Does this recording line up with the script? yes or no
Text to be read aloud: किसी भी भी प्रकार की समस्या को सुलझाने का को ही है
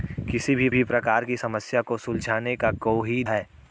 yes